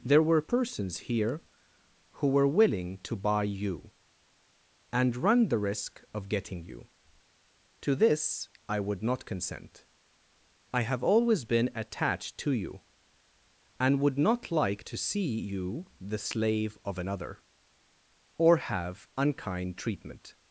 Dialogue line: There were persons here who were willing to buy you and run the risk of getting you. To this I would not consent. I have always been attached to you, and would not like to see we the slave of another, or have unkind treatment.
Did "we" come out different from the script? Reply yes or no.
yes